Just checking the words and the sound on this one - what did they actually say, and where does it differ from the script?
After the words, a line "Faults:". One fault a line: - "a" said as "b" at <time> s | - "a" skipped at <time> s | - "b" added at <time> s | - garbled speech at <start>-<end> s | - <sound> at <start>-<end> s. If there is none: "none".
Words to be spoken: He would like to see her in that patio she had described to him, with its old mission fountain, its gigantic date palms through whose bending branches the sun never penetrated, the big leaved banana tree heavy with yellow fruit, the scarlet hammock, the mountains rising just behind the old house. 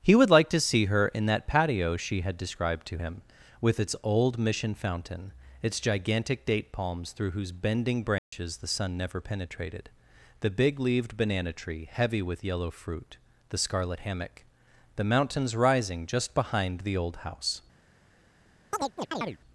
He would like to see her in that patio she had described to him, with its old mission fountain, its gigantic date palms through whose bending branches the sun never penetrated, the big leaved banana tree heavy with yellow fruit, the scarlet hammock, the mountains rising just behind the old house.
Faults:
- dropout at 8.2-8.3 s
- chirp at 18.7-19.4 s